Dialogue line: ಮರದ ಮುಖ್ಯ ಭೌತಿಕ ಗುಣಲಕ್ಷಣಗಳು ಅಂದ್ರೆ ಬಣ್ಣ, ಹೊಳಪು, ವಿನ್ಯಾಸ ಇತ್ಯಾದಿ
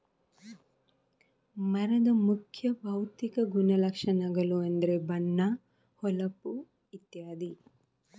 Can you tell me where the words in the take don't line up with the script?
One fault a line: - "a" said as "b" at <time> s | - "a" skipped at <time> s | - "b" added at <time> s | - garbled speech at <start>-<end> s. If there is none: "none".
- "ವಿನ್ಯಾಸ" skipped at 6.5 s